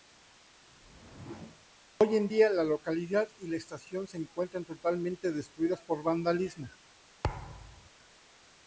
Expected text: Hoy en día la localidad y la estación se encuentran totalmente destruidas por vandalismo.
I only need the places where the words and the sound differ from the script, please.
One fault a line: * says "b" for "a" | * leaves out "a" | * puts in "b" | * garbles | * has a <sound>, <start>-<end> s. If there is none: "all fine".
* has a whoosh, 0.7-1.7 s
* has a thud, 7.2-7.9 s